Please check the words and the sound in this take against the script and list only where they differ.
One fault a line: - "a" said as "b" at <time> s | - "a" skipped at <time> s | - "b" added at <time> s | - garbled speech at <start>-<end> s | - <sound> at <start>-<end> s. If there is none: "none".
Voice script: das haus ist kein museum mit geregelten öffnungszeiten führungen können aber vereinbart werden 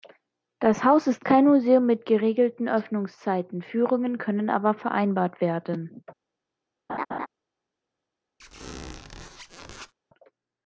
- laugh at 6.9-7.3 s
- squeak at 8.4-9.9 s